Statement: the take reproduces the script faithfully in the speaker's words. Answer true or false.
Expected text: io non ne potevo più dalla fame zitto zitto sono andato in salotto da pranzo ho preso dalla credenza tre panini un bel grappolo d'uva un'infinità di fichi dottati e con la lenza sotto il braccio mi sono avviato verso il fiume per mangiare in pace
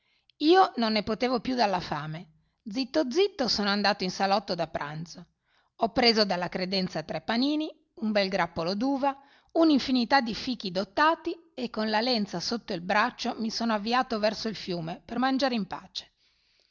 true